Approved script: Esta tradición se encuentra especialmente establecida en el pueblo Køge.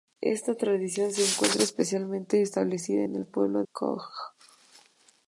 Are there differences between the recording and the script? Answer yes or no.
no